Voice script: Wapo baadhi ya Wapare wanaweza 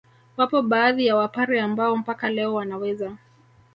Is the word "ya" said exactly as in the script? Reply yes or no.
yes